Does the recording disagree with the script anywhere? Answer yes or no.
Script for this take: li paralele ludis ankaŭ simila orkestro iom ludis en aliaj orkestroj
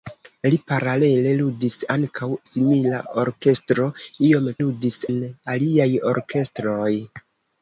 no